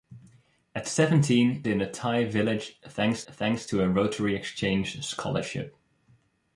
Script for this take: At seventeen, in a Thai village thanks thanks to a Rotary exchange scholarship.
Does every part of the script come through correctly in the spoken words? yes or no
yes